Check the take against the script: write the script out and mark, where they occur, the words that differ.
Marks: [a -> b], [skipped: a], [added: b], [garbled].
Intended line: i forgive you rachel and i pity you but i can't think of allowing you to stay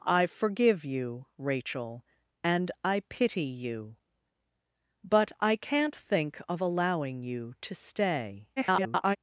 i forgive you rachel and i pity you but i can't think of allowing you to stay [garbled]